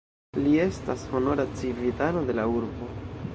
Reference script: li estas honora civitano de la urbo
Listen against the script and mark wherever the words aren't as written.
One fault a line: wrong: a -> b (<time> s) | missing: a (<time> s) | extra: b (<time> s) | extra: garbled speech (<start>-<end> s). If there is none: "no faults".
no faults